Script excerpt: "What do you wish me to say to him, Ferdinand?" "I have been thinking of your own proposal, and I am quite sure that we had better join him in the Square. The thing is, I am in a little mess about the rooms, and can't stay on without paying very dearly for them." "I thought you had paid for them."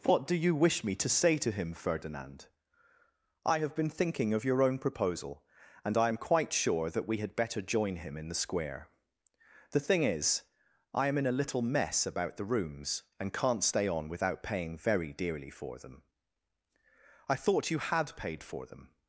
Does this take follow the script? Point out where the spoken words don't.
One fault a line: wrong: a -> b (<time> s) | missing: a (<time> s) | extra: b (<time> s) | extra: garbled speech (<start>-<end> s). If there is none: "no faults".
no faults